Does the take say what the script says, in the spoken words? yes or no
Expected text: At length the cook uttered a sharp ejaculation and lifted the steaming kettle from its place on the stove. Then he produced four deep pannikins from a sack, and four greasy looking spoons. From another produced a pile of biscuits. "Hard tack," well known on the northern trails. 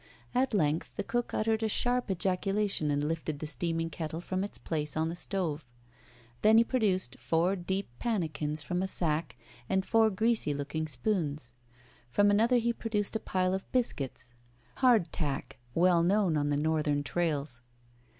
no